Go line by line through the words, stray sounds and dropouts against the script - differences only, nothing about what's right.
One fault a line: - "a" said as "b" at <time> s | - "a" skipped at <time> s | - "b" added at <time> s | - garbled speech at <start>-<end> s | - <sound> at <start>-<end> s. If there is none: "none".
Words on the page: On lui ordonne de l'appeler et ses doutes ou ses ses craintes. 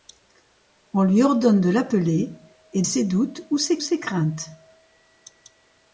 none